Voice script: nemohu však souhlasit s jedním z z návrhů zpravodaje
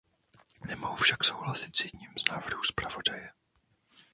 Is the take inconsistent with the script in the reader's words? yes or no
yes